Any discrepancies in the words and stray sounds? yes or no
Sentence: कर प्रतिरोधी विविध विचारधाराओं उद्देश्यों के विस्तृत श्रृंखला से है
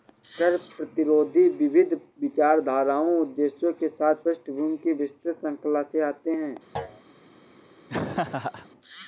yes